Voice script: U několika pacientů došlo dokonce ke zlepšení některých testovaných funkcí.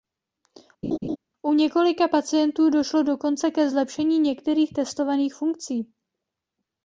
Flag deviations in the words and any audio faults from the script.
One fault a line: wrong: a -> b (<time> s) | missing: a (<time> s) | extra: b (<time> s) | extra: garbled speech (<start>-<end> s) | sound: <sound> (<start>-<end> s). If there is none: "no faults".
sound: laugh (0.8-1.2 s)